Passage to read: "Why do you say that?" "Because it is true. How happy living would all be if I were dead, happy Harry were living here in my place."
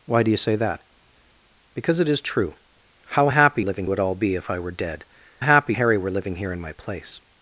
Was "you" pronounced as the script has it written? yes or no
yes